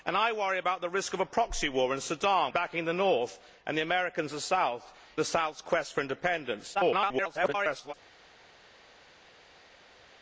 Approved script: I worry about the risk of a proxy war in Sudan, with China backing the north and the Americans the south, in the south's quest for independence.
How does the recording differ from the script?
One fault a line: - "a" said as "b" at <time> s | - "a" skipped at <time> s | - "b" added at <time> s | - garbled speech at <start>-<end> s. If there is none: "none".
- "with China" skipped at 2.5 s
- "in" skipped at 4.9 s
- garbled speech at 6.7-7.9 s